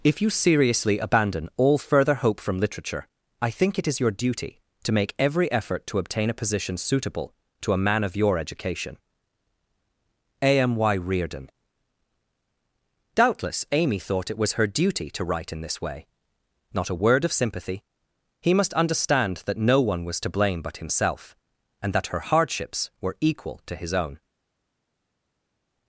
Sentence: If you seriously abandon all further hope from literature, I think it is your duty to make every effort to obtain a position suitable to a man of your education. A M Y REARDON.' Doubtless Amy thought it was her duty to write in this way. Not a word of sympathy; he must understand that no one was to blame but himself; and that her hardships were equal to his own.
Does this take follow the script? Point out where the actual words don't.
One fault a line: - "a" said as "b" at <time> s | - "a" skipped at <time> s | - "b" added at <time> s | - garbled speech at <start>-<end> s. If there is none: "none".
none